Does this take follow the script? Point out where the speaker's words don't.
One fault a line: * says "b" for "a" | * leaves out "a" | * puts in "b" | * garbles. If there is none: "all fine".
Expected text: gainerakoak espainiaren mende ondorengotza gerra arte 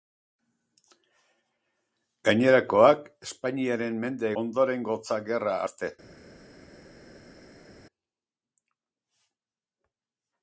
all fine